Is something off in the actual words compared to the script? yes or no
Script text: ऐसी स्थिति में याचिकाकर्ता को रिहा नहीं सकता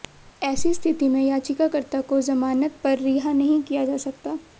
yes